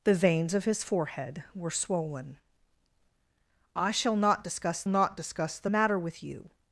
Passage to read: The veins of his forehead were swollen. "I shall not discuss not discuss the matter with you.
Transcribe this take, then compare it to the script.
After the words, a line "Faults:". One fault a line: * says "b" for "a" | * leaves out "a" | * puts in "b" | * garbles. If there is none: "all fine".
The veins of his forehead were swollen. "I shall not discuss not discuss the matter with you.
Faults:
all fine